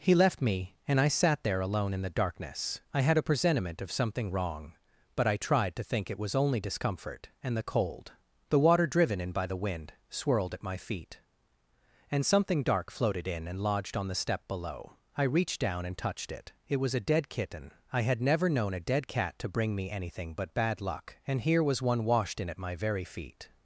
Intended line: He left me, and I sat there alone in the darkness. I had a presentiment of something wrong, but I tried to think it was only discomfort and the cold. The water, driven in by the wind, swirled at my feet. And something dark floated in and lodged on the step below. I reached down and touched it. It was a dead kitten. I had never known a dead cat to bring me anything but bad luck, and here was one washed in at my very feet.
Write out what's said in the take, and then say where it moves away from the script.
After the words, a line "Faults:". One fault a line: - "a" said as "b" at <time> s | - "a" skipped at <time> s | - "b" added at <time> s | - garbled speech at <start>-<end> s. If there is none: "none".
He left me, and I sat there alone in the darkness. I had a presentiment of something wrong, but I tried to think it was only discomfort and the cold. The water, driven in by the wind, swirled at my feet. And something dark floated in and lodged on the step below. I reached down and touched it. It was a dead kitten. I had never known a dead cat to bring me anything but bad luck, and here was one washed in at my very feet.
Faults:
none